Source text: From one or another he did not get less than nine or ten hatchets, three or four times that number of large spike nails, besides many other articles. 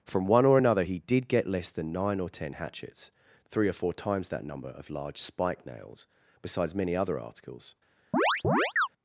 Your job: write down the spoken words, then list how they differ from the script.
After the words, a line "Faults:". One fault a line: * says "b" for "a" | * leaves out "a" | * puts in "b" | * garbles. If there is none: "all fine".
From one or another he did get less than nine or ten hatchets, three or four times that number of large spike nails, besides many other articles.
Faults:
* leaves out "not"